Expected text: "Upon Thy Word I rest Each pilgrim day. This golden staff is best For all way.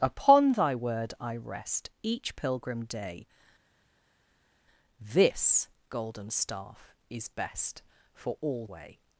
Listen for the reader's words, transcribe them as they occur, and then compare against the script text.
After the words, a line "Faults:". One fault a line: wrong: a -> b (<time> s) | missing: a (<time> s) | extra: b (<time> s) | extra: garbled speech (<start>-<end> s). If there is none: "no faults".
"Upon Thy Word I rest Each pilgrim day. This golden staff is best For all way.
Faults:
no faults